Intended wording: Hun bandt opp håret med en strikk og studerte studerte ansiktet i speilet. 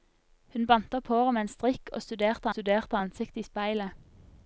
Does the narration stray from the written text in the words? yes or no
no